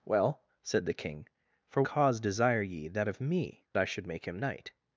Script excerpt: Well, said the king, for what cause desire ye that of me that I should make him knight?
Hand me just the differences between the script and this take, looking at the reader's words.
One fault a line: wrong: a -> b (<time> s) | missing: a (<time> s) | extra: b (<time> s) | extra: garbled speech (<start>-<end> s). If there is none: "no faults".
missing: what (1.8 s)
missing: that (3.6 s)